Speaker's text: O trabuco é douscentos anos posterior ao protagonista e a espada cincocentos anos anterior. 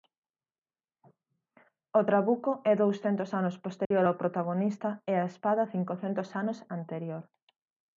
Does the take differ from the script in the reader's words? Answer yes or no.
no